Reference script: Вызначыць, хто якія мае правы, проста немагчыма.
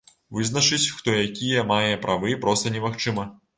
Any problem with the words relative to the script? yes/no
no